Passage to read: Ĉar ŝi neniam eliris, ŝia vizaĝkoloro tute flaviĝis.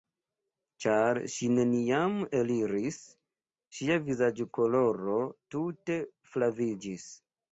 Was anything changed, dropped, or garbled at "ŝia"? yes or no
no